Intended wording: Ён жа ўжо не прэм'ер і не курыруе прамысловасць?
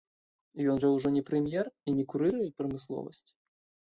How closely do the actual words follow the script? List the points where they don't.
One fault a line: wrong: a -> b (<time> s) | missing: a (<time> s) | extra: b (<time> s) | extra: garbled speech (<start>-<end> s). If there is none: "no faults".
no faults